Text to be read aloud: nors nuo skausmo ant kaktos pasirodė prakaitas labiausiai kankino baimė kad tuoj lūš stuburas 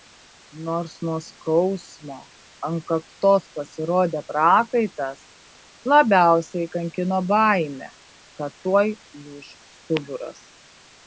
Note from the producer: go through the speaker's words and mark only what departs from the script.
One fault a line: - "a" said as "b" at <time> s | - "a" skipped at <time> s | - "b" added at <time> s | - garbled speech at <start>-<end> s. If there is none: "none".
none